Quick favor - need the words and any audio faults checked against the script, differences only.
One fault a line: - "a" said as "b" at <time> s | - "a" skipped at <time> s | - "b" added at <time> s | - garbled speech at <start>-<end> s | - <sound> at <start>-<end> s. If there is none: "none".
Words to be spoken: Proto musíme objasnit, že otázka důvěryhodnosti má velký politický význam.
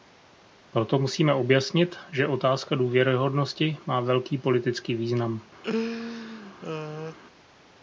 - laugh at 5.6-7.2 s